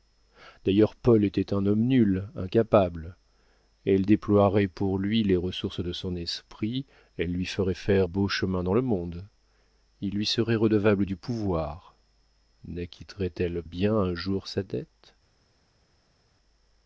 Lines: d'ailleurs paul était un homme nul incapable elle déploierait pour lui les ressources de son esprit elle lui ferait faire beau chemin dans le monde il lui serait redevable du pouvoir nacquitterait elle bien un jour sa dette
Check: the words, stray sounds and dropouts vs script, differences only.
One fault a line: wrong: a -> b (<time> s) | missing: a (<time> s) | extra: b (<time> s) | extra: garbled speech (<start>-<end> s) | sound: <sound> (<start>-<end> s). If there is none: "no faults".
no faults